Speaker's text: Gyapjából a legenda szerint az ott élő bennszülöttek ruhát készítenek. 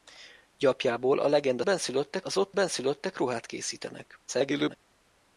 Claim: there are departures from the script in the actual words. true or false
true